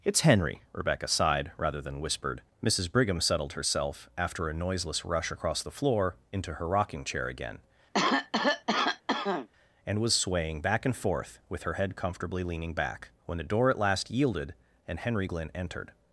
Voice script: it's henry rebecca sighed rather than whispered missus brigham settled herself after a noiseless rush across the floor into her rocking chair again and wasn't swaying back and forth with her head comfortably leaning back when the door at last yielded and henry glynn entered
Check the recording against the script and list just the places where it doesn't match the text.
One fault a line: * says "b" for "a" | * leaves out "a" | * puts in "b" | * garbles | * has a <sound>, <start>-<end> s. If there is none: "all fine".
* has a cough, 7.9-9.5 s
* says "was" for "wasn't"